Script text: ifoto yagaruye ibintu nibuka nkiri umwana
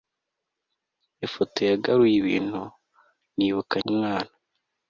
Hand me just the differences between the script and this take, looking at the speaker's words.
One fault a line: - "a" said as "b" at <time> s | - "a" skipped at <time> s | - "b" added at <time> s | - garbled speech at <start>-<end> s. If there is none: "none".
- "nkiri" skipped at 3.8 s